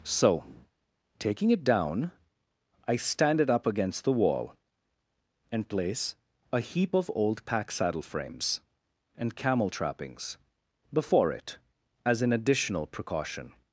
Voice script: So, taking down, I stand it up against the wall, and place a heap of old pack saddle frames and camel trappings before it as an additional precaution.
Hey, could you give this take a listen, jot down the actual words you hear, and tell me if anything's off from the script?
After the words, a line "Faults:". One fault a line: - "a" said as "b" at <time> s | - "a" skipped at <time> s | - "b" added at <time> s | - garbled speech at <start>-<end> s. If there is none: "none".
So, taking it down, I stand it up against the wall, and place a heap of old pack saddle frames and camel trappings before it as an additional precaution.
Faults:
- "it" added at 1.5 s